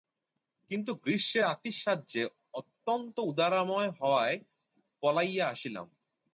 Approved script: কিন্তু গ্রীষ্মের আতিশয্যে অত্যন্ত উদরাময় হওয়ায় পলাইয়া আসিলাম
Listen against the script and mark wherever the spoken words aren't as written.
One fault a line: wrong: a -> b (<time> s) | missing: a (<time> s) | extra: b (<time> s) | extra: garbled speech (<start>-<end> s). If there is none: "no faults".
no faults